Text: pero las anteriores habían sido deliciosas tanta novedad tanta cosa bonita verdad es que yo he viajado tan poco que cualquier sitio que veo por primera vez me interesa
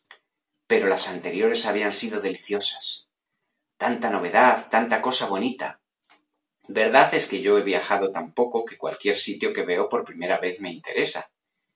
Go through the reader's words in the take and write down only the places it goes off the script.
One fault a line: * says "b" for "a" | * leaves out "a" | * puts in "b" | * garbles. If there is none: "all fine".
all fine